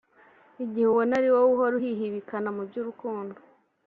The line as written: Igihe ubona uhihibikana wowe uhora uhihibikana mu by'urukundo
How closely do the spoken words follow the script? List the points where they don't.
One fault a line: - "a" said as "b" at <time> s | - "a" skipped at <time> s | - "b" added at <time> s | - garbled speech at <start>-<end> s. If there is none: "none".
- "uhihibikana" said as "ari" at 1.2 s